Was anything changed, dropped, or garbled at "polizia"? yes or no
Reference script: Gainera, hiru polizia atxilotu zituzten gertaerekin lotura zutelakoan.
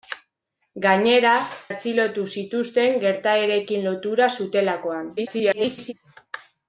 yes